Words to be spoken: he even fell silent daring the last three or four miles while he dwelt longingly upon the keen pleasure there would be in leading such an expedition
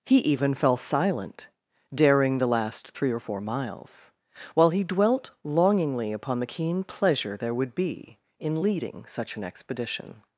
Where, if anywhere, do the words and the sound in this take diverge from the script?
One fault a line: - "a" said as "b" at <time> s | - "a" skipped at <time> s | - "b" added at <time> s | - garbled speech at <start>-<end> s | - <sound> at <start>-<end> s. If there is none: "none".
none